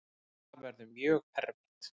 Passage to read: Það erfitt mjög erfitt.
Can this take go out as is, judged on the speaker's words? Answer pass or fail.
fail